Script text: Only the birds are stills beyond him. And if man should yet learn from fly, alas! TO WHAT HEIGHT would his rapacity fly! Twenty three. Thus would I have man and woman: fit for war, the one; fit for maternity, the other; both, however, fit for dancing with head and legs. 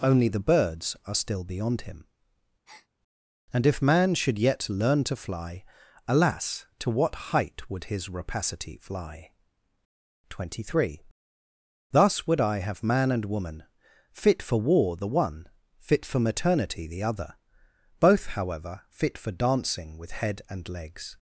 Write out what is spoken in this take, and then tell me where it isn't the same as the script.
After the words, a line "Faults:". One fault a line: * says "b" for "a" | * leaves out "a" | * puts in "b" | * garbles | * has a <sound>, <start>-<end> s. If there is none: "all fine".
Only the birds are still beyond him. And if man should yet learn to fly, alas! TO WHAT HEIGHT would his rapacity fly! Twenty three. Thus would I have man and woman: fit for war, the one; fit for maternity, the other; both, however, fit for dancing with head and legs.
Faults:
* says "still" for "stills"
* has a breath, 2.7-2.9 s
* says "to" for "from"